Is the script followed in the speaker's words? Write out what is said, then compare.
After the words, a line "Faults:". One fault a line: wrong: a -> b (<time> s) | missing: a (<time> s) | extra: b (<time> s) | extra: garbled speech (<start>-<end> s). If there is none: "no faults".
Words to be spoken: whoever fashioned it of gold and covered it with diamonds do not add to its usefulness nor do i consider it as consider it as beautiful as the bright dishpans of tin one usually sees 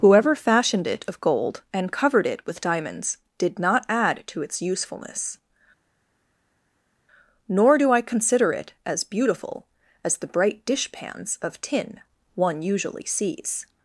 whoever fashioned it of gold and covered it with diamonds did not add to its usefulness nor do i consider it as beautiful as the bright dishpans of tin one usually sees
Faults:
wrong: do -> did (3.4 s)
missing: consider it as (9.0 s)